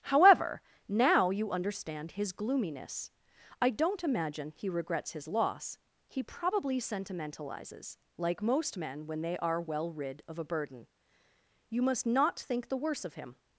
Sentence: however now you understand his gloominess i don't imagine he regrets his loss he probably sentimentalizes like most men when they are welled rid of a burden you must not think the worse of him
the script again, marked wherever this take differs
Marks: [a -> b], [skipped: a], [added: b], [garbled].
however now you understand his gloominess i don't imagine he regrets his loss he probably sentimentalizes like most men when they are [welled -> well] rid of a burden you must not think the worse of him